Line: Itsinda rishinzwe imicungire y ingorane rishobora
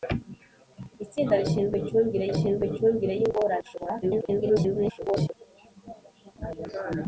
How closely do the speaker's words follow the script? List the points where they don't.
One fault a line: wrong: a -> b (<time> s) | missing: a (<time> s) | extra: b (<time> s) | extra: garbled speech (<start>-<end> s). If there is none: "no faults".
extra: rishinzwe imicungire (2.3 s)
extra: garbled speech (4.0-5.4 s)